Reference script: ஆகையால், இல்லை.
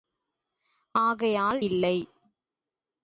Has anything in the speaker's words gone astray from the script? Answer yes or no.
no